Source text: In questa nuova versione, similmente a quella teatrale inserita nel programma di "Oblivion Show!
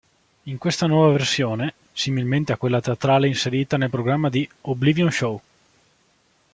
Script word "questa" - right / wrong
right